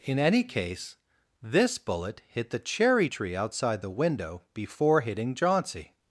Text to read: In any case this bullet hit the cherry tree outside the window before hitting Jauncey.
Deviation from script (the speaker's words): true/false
false